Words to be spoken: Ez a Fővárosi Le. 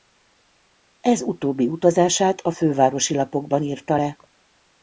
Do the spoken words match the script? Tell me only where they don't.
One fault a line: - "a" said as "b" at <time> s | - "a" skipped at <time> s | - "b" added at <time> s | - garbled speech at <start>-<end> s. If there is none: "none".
- "utóbbi utazását" added at 1.2 s
- "Lapokban írta" added at 3.1 s